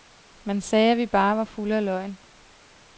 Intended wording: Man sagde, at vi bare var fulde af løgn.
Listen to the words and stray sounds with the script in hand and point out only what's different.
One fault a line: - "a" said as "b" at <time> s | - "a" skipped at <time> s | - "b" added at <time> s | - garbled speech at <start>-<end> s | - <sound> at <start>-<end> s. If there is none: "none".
none